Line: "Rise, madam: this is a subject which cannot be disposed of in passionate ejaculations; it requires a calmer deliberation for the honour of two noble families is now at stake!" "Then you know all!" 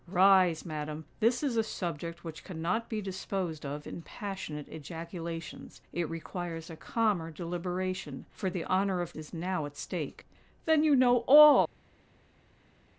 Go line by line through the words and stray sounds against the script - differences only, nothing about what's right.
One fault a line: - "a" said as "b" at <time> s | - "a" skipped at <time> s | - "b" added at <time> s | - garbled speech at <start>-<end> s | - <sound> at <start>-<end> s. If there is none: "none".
- "two noble families" skipped at 9.1 s